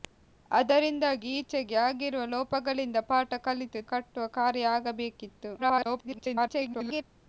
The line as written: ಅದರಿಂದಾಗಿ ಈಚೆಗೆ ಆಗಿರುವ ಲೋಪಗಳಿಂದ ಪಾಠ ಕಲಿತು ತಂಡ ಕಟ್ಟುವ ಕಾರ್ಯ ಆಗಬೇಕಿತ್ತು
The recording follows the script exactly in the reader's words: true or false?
false